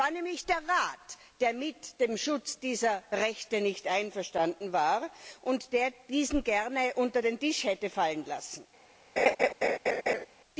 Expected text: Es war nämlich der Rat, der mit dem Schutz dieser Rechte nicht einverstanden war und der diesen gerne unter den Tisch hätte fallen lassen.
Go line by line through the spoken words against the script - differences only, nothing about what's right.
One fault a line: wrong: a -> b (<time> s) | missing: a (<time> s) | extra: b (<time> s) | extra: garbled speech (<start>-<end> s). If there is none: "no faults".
no faults